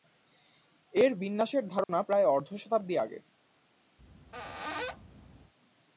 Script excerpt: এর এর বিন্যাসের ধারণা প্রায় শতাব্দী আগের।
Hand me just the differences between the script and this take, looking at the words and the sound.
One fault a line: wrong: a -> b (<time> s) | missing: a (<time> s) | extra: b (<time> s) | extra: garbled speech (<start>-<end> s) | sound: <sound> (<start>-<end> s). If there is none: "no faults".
missing: এর (1.1 s)
sound: dropout (1.8-1.9 s)
extra: অর্ধ (2.3 s)
sound: squeak (4.0-5.5 s)